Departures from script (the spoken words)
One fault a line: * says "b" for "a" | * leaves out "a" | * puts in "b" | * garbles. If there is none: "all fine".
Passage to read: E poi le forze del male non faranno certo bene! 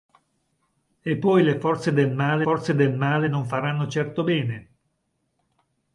* puts in "forze del male"